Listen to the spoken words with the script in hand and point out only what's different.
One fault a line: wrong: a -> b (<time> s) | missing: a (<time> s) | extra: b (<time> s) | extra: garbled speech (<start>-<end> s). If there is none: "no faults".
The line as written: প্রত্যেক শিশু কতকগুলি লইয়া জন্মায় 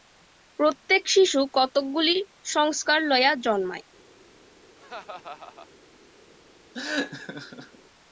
extra: সংস্কার (2.5 s)